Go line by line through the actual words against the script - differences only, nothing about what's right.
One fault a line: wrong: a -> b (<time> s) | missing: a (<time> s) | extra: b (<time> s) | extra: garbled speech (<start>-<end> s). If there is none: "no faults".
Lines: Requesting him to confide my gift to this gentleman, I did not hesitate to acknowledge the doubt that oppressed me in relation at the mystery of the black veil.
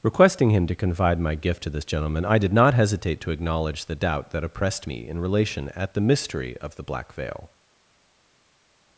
no faults